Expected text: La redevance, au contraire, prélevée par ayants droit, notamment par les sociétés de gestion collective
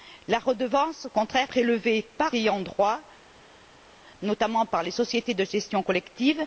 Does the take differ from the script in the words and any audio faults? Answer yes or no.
no